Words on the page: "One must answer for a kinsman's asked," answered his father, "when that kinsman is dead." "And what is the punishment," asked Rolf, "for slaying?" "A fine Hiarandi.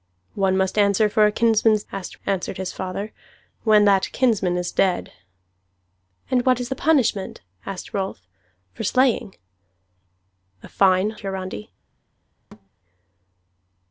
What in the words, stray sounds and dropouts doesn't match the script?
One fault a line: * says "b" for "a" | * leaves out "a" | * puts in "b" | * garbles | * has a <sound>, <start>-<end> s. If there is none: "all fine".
* has a thud, 12.5-12.7 s